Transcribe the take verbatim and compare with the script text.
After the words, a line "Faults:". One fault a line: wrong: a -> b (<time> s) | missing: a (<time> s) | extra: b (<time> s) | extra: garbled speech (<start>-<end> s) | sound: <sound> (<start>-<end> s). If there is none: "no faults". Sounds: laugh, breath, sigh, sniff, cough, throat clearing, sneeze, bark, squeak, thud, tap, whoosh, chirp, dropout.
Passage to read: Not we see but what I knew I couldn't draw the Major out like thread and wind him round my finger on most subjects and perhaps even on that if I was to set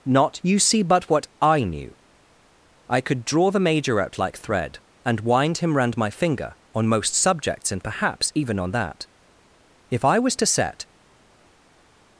Not you see but what I knew I could draw the Major out like thread and wind him round my finger on most subjects and perhaps even on that if I was to set
Faults:
wrong: we -> you (0.4 s)
wrong: couldn't -> could (3.0 s)